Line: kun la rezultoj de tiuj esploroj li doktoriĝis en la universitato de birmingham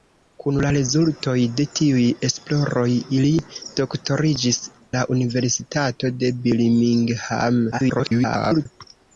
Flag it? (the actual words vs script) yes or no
yes